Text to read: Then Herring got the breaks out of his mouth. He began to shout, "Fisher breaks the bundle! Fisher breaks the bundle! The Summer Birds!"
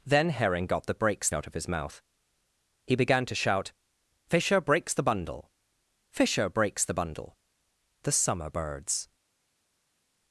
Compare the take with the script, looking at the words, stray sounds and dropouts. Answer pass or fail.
pass